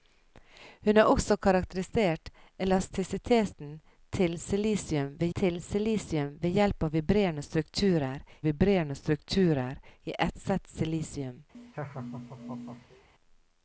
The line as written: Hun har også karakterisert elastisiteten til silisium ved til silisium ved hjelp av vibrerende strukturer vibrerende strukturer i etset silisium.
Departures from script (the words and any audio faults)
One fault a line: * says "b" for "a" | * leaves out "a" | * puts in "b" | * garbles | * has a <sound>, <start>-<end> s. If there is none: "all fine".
* has a laugh, 11.5-13.1 s